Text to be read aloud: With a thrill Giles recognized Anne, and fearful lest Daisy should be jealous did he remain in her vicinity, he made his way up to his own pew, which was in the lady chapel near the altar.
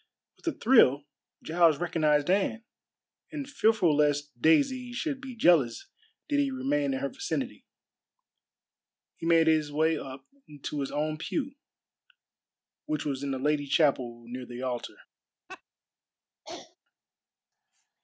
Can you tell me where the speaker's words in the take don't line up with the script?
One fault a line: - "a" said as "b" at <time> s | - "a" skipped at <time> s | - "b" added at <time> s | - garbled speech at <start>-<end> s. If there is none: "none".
none